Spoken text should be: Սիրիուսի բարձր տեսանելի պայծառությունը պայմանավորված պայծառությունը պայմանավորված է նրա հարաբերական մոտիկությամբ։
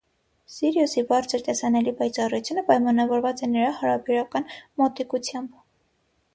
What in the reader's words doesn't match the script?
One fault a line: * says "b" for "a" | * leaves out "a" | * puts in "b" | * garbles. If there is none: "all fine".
* leaves out "պայծառությունը պայմանավորված"